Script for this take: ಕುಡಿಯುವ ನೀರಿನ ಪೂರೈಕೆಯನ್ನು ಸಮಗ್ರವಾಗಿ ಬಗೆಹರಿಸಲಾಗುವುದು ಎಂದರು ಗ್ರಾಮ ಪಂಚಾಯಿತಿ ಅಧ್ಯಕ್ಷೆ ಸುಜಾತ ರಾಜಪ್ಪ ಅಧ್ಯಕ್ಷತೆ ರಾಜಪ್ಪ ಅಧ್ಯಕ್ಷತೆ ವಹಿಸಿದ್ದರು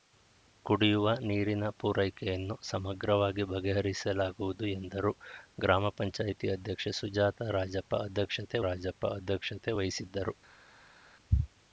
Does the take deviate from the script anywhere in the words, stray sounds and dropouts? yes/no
no